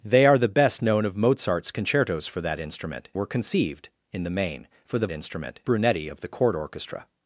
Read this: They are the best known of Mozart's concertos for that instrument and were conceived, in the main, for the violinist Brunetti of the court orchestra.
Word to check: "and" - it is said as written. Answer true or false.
false